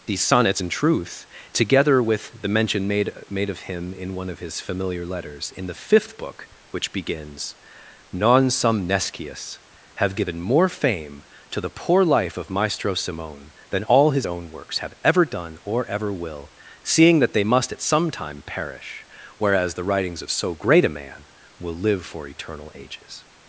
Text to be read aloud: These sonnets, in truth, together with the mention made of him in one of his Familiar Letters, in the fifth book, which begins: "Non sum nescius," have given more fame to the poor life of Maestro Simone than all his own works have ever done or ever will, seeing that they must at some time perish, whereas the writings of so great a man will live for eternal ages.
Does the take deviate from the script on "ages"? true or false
false